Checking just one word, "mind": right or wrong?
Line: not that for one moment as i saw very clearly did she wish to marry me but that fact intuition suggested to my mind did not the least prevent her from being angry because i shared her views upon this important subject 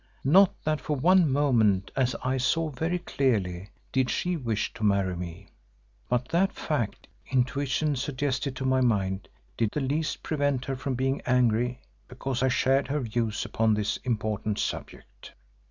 right